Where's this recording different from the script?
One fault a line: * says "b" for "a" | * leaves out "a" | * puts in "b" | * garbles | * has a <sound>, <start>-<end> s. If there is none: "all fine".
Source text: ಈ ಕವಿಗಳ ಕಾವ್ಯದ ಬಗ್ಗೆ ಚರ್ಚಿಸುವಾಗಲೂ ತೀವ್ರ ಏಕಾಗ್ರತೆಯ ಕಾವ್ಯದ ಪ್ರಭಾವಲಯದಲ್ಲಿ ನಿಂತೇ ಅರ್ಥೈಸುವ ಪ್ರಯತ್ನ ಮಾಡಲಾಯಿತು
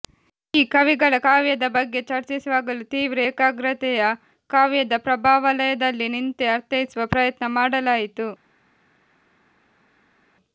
all fine